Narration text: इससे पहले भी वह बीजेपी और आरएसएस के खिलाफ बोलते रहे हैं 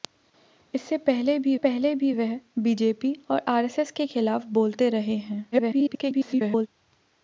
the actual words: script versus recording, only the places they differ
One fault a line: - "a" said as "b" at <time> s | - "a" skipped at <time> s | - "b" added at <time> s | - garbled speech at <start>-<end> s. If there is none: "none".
- "पहले भी" added at 1.6 s
- garbled speech at 5.5-6.7 s